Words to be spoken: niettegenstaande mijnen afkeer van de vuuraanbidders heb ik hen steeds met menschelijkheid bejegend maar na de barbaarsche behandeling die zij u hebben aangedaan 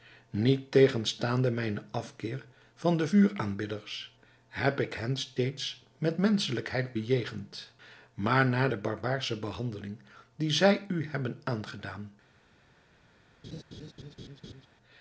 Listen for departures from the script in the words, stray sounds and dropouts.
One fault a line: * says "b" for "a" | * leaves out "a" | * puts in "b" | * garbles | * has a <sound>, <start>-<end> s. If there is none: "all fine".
* has a laugh, 13.4-14.7 s